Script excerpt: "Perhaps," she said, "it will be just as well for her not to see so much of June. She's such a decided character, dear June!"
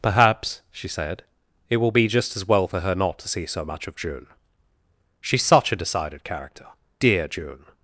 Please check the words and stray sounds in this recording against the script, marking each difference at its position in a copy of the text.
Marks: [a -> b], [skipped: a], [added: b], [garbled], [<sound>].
"Perhaps," she said, "it will be just as well for her not to see so much of June. She's such a decided character, dear June!"